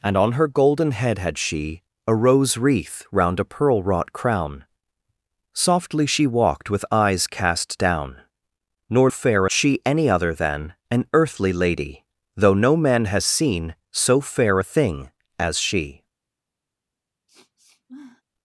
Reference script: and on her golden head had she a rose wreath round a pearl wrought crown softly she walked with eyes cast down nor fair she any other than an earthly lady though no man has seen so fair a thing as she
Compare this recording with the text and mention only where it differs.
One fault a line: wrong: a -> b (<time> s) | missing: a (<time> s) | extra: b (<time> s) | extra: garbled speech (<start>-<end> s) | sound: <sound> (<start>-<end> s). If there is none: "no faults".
sound: sniff (17.3-18.2 s)